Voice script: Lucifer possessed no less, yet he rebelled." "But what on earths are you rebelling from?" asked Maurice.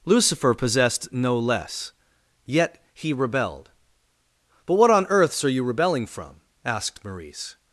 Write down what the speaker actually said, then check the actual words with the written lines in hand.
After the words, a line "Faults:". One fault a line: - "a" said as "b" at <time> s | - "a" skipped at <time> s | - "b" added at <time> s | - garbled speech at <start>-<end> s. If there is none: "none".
Lucifer possessed no less, yet he rebelled." "But what on earths are you rebelling from?" asked Maurice.
Faults:
none